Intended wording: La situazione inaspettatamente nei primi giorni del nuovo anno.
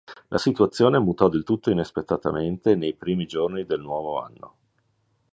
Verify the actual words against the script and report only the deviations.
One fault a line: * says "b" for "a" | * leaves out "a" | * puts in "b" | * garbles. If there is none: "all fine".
* puts in "mutò del tutto"